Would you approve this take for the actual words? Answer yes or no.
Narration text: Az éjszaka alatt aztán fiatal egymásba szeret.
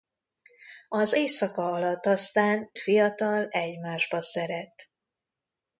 yes